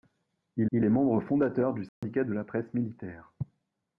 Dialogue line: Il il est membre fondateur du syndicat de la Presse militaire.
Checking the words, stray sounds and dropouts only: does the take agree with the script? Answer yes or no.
no